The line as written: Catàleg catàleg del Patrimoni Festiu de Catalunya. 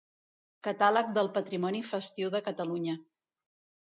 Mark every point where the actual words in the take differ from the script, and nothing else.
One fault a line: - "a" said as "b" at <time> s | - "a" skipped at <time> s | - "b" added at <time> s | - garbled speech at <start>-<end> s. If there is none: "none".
- "catàleg" skipped at 1.1 s